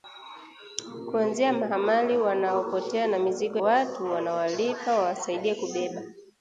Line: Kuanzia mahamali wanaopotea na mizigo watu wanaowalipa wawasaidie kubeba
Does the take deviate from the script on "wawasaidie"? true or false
false